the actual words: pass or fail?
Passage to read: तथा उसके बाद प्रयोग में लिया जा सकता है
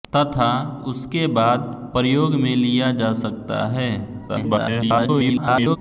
fail